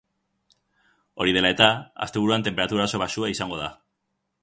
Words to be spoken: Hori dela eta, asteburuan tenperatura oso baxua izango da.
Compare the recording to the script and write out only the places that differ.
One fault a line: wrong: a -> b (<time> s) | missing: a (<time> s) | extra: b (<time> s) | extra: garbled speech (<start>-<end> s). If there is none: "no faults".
no faults